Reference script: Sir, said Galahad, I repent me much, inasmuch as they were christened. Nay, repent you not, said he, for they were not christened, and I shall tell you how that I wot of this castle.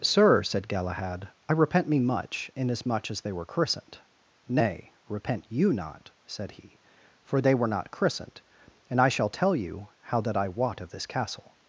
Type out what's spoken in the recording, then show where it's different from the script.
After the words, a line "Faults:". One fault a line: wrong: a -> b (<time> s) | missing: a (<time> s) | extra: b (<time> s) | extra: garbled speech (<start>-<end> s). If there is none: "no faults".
Sir, said Galahad, I repent me much, inasmuch as they were christened. Nay, repent you not, said he, for they were not christened, and I shall tell you how that I wot of this castle.
Faults:
no faults